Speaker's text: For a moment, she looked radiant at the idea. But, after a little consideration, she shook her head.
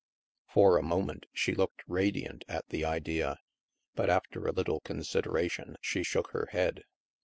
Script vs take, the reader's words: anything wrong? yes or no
no